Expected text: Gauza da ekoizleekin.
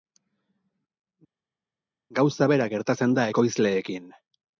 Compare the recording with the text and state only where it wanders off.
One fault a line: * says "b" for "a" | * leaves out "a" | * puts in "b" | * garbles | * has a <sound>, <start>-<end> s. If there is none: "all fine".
* puts in "bera gertatzen"